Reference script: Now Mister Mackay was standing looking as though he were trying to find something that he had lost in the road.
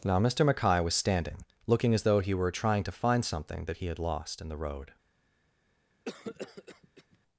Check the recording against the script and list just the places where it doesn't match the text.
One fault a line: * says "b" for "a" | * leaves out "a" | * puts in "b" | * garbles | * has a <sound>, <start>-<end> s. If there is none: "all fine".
* has a cough, 6.0-7.2 s